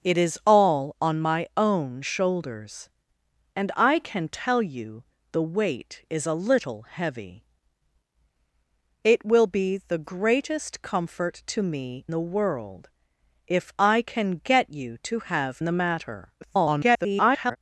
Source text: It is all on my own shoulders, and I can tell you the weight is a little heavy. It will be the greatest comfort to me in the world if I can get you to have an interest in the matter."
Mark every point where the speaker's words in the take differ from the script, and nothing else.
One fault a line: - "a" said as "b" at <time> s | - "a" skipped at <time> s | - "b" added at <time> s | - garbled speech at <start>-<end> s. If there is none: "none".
- "in" skipped at 12.1 s
- "an interest in" skipped at 15.6 s
- garbled speech at 16.4-17.6 s